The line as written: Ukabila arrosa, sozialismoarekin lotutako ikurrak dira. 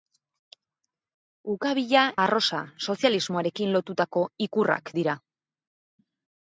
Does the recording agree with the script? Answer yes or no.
yes